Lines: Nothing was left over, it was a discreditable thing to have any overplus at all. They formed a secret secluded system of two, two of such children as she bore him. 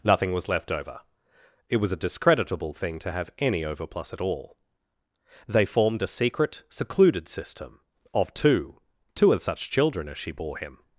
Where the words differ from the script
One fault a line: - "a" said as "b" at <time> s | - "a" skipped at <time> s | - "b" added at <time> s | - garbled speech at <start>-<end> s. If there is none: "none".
none